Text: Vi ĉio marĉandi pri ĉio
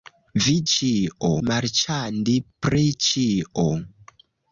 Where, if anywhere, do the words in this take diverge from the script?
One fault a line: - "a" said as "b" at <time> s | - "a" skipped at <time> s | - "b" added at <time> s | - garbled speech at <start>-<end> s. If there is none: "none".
none